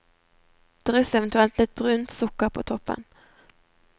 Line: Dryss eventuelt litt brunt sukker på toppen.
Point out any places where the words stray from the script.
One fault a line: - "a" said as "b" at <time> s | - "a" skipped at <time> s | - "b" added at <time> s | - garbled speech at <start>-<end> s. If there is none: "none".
none